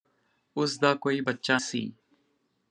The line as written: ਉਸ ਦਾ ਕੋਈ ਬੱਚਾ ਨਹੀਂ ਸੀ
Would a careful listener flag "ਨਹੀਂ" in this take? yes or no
yes